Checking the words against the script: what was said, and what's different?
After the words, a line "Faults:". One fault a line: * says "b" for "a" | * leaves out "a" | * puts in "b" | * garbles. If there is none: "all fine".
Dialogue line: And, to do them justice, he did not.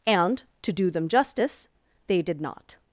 And, to do them justice, they did not.
Faults:
* says "they" for "he"